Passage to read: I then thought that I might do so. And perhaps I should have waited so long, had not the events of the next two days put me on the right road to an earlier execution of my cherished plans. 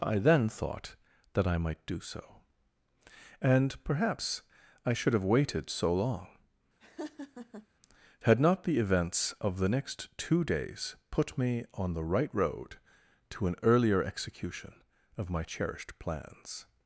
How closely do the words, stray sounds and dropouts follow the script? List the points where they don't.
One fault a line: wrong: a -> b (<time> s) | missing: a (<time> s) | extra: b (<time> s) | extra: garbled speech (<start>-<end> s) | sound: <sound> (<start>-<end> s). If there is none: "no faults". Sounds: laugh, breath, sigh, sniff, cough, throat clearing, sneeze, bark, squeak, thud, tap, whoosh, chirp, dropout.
sound: laugh (6.8-7.7 s)